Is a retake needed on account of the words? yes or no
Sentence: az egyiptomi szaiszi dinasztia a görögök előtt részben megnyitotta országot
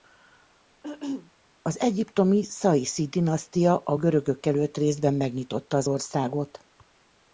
yes